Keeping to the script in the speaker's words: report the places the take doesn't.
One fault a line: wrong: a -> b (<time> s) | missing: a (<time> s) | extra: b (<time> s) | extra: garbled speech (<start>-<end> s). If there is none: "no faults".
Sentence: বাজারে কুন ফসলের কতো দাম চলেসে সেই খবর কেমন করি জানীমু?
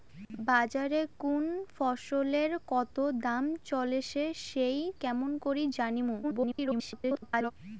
missing: খবর (4.8 s)
extra: garbled speech (6.2-7.5 s)